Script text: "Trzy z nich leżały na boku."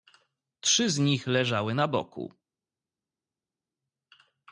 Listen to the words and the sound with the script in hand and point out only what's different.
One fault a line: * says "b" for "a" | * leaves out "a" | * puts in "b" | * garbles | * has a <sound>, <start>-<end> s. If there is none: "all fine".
all fine